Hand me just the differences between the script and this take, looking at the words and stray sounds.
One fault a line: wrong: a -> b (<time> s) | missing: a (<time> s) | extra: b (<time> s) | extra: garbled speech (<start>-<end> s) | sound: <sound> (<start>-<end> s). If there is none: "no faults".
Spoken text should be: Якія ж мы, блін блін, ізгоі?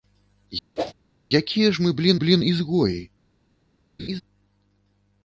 sound: whoosh (0.8-0.9 s)
sound: laugh (4.0-4.2 s)